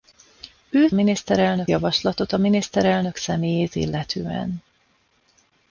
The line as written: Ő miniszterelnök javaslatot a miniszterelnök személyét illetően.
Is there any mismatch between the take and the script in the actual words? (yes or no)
no